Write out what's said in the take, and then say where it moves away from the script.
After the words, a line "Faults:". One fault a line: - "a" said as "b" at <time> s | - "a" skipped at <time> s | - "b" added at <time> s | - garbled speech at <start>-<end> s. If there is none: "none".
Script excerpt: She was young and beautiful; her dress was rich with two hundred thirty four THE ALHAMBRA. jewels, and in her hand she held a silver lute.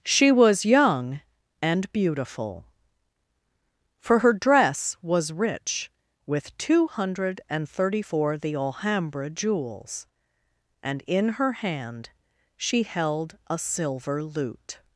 She was young and beautiful; for her dress was rich with two hundred and thirty four THE ALHAMBRA. jewels, and in her hand she held a silver lute.
Faults:
- "for" added at 4.0 s
- "and" added at 7.5 s